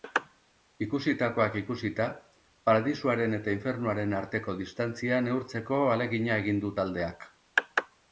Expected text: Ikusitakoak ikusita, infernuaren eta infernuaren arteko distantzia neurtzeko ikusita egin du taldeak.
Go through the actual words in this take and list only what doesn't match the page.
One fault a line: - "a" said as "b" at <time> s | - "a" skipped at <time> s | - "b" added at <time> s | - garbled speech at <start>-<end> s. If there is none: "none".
- "infernuaren" said as "paradisuaren" at 2.7 s
- "ikusita" said as "ahalegina" at 5.8 s